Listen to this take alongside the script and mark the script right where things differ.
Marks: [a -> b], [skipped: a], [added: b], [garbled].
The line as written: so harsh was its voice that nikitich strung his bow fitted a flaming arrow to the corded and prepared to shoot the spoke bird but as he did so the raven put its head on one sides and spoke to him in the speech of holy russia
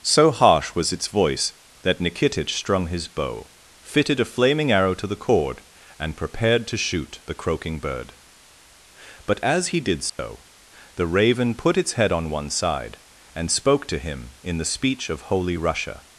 so harsh was its voice that nikitich strung his bow fitted a flaming arrow to the [corded -> cord] and prepared to shoot the [spoke -> croaking] bird but as he did so the raven put its head on one [sides -> side] and spoke to him in the speech of holy russia